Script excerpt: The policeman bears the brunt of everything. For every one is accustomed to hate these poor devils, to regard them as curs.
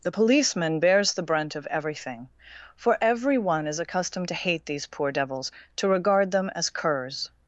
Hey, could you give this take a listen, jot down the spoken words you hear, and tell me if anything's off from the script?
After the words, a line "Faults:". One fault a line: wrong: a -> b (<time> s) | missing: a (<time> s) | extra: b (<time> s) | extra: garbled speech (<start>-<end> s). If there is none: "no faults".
The policeman bears the brunt of everything. For every one is accustomed to hate these poor devils, to regard them as curs.
Faults:
no faults